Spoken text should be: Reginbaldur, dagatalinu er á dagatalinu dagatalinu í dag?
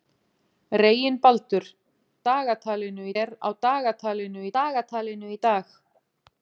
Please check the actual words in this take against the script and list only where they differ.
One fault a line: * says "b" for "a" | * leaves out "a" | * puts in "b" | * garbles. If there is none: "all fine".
all fine